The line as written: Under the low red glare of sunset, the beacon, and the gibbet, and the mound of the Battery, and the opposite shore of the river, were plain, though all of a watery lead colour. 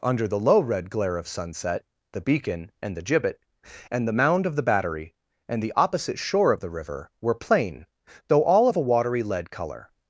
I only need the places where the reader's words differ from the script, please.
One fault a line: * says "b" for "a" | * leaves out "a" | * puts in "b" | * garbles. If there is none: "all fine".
all fine